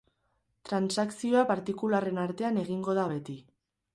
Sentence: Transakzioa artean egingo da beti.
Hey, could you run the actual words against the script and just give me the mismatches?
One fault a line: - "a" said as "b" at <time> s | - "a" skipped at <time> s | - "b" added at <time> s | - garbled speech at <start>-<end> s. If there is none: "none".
- "partikularren" added at 1.5 s